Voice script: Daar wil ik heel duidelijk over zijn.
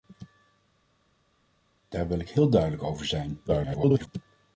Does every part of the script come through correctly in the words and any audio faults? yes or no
no